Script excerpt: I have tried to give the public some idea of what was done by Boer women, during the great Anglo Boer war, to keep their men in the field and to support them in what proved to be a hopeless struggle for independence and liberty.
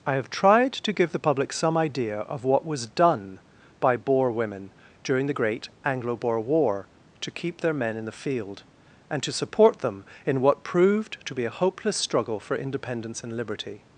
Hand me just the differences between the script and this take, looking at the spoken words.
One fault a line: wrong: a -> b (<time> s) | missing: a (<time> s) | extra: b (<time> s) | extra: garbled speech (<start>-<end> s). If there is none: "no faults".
no faults